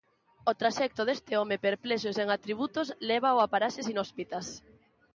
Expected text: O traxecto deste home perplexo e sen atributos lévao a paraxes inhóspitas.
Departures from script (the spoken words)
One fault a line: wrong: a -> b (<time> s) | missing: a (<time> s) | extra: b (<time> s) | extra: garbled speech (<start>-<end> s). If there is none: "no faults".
no faults